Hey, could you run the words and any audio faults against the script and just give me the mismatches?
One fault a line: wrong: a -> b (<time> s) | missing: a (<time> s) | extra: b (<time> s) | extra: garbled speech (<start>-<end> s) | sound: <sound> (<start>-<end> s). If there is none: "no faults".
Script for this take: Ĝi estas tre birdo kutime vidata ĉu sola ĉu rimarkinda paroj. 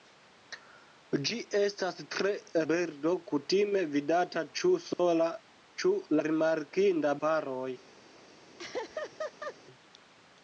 sound: dropout (4.9-5.0 s)
sound: laugh (8.6-9.6 s)